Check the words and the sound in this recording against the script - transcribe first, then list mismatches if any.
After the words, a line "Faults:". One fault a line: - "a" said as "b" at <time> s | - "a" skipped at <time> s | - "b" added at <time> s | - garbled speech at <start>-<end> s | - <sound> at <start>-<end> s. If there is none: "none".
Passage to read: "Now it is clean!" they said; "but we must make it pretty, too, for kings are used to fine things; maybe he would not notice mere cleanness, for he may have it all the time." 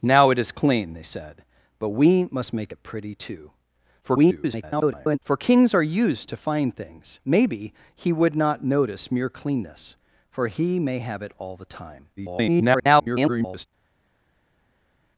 "Now it is clean!" they said; "but we must make it pretty, too, [garbled] for kings are used to fine things; maybe he would not notice mere cleanness, for he may have it all the time." [garbled]
Faults:
- garbled speech at 4.0-5.2 s
- garbled speech at 12.2-13.7 s